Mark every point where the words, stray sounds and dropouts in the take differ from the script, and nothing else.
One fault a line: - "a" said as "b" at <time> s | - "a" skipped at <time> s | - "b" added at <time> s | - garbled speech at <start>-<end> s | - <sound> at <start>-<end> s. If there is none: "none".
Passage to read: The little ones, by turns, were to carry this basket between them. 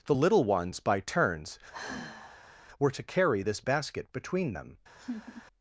- sigh at 1.7-2.6 s
- laugh at 5.0-5.4 s